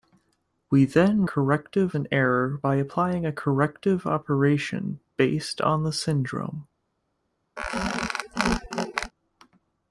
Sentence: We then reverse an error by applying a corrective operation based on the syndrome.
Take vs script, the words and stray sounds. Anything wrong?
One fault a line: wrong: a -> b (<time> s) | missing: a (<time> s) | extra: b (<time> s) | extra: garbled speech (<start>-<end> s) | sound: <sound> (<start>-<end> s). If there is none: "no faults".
wrong: reverse -> corrective (1.2 s)
sound: squeak (7.6-9.1 s)